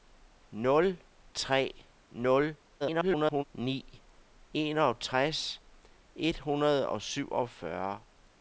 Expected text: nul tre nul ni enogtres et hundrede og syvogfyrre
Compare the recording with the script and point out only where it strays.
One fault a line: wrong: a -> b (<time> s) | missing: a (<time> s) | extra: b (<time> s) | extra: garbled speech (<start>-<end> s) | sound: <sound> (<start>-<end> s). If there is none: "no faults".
extra: garbled speech (2.8-3.4 s)